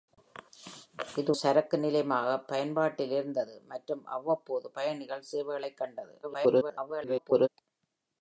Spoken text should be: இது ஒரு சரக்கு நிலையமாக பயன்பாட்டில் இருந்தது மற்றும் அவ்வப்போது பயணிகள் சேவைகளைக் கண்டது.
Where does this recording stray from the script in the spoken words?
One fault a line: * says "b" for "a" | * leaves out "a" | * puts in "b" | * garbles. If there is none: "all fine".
* leaves out "ஒரு"
* garbles